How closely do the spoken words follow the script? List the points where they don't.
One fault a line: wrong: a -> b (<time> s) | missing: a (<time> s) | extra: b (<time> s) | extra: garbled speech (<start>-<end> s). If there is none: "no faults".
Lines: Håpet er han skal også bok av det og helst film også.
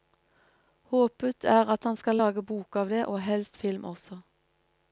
extra: at (1.7 s)
wrong: også -> lage (2.2 s)